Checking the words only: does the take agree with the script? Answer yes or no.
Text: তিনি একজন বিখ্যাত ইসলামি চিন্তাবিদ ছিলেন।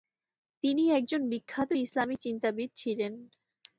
yes